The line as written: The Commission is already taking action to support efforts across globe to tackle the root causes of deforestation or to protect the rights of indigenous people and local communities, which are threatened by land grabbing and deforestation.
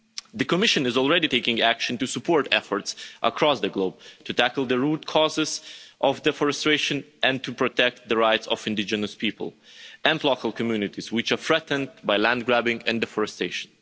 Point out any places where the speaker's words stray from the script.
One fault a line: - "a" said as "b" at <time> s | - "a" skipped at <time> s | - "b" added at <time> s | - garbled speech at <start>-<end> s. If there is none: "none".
- "the" added at 3.6 s
- "or" said as "and" at 7.2 s